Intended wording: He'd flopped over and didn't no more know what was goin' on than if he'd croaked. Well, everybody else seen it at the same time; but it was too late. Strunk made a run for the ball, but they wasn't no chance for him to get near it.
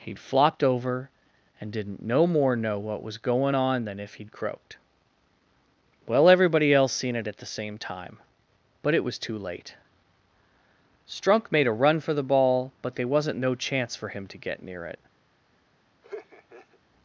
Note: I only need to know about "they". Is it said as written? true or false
false